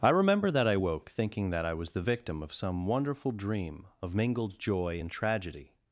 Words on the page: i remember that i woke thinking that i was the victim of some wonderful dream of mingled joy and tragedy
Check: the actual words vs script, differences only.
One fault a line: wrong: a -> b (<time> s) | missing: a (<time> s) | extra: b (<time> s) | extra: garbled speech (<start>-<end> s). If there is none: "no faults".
no faults